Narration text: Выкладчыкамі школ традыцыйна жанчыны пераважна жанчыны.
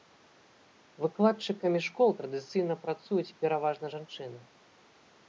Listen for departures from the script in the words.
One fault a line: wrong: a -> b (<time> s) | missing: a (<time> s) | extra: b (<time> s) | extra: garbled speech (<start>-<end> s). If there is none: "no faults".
wrong: жанчыны -> працуюць (2.9 s)